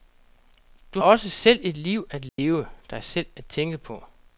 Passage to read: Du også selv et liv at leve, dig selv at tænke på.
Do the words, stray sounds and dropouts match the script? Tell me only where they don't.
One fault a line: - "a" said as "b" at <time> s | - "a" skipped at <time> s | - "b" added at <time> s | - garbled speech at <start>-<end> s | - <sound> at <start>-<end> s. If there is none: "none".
- dropout at 2.3-2.4 s